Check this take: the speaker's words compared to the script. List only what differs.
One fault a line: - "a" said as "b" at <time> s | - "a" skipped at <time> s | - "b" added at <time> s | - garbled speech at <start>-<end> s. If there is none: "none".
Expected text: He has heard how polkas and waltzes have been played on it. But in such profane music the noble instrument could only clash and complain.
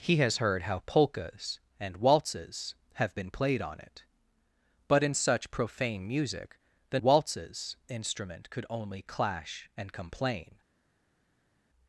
- "noble" said as "waltzes" at 7.0 s